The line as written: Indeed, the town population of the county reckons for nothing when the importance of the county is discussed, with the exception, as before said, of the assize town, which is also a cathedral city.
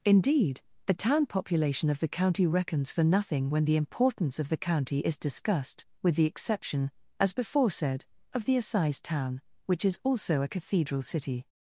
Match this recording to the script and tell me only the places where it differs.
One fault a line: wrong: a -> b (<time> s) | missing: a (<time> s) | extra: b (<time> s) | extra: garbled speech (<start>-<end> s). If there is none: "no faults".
no faults